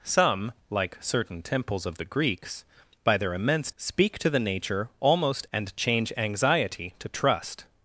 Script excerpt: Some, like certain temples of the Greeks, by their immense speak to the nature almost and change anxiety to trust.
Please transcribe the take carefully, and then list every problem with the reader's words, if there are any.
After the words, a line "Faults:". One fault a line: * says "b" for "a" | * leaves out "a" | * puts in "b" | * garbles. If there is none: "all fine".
Some, like certain temples of the Greeks, by their immense speak to the nature almost and change anxiety to trust.
Faults:
all fine